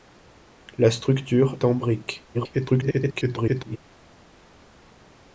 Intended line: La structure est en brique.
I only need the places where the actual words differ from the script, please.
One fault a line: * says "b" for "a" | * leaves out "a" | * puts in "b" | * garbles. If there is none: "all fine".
* leaves out "est"
* garbles